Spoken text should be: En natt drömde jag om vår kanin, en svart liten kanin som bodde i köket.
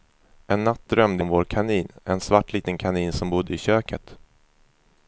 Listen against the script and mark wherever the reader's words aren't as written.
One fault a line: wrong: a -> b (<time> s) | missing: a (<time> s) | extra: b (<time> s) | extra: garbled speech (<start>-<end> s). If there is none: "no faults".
missing: jag (1.2 s)